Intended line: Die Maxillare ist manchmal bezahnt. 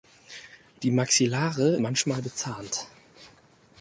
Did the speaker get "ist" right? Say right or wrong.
wrong